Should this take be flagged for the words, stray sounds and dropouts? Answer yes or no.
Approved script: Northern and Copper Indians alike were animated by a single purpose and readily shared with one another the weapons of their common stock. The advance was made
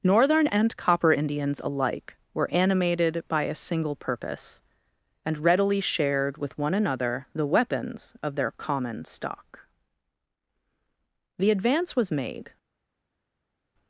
no